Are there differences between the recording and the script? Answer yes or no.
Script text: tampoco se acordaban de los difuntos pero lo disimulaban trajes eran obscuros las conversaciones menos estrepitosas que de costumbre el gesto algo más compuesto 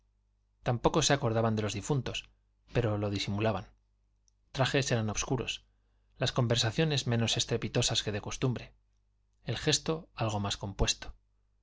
no